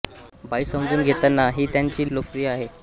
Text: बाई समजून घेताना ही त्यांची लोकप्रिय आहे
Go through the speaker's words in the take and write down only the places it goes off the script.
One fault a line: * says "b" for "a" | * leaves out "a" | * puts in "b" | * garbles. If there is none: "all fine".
all fine